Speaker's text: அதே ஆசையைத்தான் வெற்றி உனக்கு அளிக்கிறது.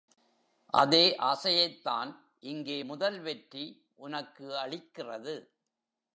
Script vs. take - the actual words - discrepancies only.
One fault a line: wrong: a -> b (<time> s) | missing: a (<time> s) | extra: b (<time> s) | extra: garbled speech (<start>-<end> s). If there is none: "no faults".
extra: இங்கே முதல் (2.4 s)